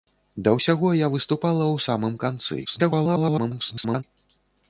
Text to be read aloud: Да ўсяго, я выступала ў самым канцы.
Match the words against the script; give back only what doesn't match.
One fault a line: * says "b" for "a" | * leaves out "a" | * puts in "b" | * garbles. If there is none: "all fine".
* garbles